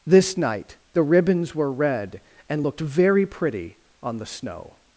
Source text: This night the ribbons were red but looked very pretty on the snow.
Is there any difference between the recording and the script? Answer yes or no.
yes